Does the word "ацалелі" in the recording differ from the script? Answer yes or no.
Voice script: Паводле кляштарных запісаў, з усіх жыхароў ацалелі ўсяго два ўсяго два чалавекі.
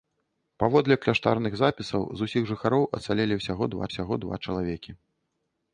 no